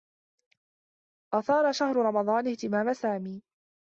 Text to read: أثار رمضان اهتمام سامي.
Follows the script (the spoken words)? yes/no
no